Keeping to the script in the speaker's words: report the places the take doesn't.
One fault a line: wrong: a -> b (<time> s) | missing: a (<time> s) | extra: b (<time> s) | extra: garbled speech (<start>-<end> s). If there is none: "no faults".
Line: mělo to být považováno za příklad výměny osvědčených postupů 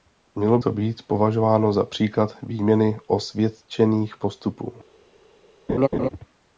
no faults